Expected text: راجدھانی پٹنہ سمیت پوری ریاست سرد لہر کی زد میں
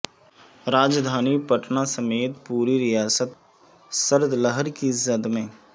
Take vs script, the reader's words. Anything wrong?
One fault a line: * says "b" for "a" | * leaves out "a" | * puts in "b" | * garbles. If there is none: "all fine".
all fine